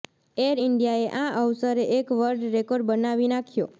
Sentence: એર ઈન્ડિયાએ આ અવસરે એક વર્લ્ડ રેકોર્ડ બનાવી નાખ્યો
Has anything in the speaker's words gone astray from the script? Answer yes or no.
no